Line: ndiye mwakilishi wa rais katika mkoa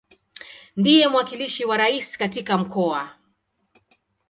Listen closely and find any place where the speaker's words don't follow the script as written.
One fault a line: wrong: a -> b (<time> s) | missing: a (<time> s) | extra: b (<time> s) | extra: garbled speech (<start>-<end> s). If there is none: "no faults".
no faults